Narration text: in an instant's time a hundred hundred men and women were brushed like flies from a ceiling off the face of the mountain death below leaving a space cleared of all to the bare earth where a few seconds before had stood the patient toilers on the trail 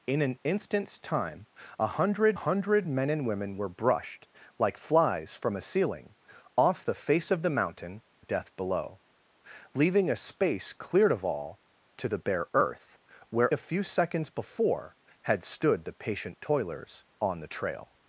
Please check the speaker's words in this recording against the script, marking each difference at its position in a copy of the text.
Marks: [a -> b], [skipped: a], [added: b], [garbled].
in an instant's time a hundred hundred men and women were brushed like flies from a ceiling off the face of the mountain death below leaving a space cleared of all to the bare earth where a few seconds before had stood the patient toilers on the trail